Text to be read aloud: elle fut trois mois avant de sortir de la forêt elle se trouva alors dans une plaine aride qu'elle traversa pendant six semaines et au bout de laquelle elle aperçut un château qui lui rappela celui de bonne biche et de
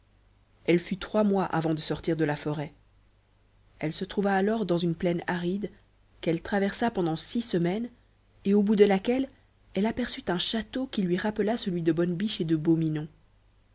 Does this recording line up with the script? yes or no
yes